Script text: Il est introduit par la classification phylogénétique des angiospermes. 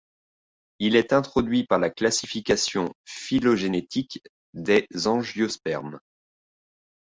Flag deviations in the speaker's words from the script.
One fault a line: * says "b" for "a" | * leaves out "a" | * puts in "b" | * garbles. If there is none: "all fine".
all fine